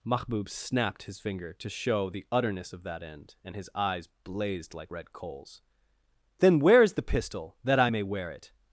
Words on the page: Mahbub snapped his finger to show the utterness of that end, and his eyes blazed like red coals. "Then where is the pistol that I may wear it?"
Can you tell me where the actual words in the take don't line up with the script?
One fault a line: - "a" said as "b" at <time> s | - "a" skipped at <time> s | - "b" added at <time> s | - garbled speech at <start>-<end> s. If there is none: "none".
none